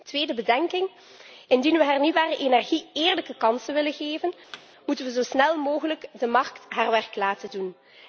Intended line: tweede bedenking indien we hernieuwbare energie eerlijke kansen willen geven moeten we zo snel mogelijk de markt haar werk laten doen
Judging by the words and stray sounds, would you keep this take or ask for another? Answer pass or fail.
fail